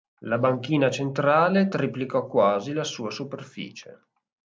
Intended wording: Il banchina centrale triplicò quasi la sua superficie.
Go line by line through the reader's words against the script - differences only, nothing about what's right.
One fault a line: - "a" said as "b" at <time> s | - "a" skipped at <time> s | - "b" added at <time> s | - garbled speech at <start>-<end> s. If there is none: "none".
- "Il" said as "La" at 0.2 s